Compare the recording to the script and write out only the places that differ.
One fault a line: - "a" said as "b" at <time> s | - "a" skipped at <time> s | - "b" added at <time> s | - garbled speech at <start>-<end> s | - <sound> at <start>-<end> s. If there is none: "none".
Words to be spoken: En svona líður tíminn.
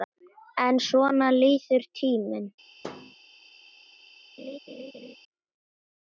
- thud at 2.8-3.2 s
- laugh at 4.4-5.2 s